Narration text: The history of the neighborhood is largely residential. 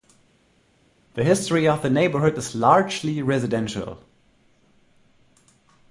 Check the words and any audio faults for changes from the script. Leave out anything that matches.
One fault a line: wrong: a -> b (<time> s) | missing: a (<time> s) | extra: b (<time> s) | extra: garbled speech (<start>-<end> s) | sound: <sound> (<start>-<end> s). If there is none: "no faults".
no faults